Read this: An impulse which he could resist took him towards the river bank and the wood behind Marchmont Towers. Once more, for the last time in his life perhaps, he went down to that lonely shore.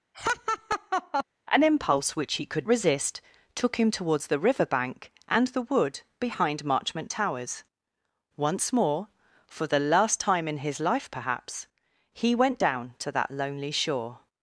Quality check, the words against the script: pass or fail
pass